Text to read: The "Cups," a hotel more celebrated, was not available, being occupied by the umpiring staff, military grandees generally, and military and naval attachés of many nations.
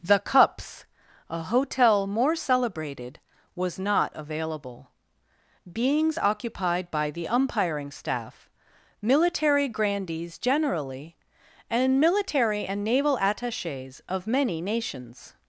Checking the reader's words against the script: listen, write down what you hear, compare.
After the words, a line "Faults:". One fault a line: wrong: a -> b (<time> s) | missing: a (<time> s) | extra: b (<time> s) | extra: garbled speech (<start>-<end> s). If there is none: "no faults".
The "Cups," a hotel more celebrated, was not available, beings occupied by the umpiring staff, military grandees generally, and military and naval attachés of many nations.
Faults:
wrong: being -> beings (5.7 s)